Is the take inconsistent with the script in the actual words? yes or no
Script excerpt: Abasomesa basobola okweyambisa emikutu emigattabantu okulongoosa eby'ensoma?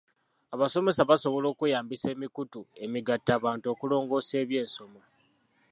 no